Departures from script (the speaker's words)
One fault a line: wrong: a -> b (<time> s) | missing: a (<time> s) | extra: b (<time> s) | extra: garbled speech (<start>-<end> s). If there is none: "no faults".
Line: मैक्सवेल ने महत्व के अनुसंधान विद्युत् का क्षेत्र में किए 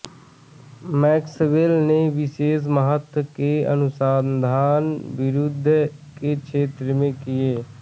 extra: विशेष (2.1 s)
wrong: का -> के (6.2 s)